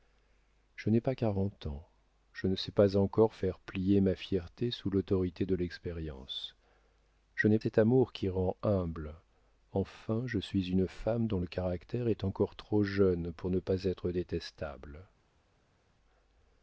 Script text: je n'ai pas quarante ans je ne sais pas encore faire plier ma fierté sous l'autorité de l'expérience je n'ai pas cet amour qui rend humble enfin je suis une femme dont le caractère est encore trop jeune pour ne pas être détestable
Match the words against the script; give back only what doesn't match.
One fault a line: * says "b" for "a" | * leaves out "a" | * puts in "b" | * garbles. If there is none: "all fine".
* leaves out "pas"